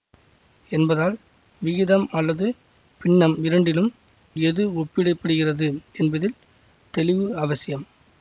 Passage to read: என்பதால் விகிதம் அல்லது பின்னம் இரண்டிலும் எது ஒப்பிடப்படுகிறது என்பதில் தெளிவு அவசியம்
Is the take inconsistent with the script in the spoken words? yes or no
no